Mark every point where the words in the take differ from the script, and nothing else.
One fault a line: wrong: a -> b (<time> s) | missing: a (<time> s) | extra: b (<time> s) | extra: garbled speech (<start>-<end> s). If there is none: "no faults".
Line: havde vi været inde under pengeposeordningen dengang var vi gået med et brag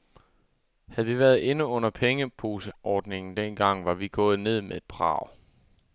extra: ned (4.4 s)